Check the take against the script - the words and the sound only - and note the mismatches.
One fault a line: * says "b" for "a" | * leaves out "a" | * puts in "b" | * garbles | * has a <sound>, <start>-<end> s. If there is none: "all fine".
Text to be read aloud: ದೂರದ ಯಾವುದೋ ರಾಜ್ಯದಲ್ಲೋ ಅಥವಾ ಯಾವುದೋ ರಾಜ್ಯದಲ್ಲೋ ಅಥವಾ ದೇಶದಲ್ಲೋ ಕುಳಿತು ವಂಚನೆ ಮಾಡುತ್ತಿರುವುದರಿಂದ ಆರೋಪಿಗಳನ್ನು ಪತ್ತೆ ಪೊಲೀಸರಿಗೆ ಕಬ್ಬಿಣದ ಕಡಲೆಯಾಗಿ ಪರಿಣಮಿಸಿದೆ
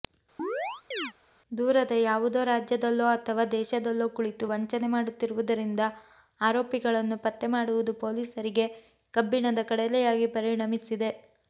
* has a chirp, 0.4-1.1 s
* leaves out "ಯಾವುದೋ ರಾಜ್ಯದಲ್ಲೋ ಅಥವಾ"
* puts in "ಮಾಡುವುದು"